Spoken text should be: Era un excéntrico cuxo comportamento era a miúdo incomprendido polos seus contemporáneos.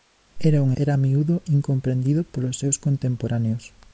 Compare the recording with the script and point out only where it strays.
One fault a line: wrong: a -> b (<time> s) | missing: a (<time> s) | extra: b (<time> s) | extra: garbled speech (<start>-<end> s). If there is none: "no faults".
missing: excéntrico cuxo comportamento (0.7 s)